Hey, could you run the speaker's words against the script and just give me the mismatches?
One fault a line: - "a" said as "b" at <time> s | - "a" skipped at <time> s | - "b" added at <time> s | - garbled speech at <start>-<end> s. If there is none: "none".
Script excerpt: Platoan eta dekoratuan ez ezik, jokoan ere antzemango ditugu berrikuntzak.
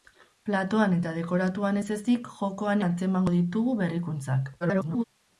- "ere" skipped at 2.9 s
- garbled speech at 4.6-5.0 s